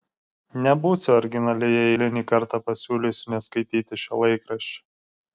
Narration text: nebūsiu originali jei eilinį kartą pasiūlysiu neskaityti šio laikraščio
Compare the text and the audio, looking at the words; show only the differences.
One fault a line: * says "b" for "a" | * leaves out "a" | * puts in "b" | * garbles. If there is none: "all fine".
all fine